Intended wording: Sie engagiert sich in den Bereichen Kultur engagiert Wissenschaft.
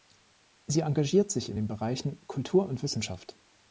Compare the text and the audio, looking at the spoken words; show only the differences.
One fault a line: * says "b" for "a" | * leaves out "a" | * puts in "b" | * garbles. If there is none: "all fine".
* says "und" for "engagiert"